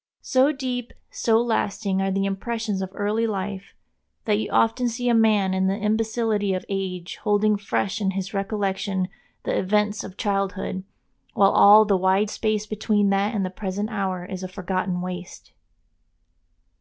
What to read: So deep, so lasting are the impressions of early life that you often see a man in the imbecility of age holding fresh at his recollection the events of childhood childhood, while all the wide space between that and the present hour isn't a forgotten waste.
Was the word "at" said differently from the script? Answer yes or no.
yes